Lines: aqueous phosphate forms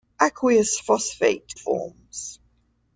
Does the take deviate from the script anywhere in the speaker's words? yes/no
no